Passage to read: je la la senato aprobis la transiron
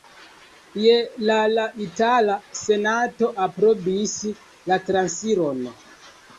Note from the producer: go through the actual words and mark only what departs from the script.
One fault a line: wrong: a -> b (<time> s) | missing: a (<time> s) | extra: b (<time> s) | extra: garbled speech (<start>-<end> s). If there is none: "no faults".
extra: itala (1.9 s)